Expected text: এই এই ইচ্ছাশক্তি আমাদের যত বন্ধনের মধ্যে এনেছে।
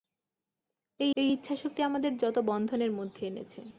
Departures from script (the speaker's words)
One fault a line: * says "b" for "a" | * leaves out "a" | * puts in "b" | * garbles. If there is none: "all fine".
all fine